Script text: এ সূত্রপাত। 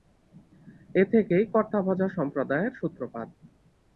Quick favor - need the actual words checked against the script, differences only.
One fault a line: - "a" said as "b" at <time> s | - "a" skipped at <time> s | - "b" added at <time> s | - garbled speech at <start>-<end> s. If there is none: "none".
- "থেকেই কর্তাভজা সম্প্রদায়ের" added at 1.1 s